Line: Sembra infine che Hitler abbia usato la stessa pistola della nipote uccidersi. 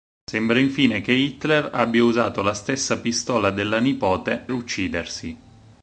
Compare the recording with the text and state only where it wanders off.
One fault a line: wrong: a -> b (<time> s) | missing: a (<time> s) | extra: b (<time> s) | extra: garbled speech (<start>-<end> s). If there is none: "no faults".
no faults